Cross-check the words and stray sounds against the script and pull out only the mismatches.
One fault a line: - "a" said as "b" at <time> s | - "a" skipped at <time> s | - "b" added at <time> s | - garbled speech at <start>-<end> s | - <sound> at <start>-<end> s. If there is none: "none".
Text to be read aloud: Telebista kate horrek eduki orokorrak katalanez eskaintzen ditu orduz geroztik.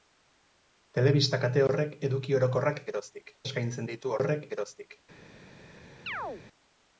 - "katalanez" said as "geroztik" at 2.9 s
- "orduz" said as "horrek" at 4.2 s
- chirp at 6.1-6.4 s